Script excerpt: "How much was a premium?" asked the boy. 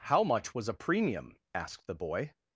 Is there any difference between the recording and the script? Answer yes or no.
no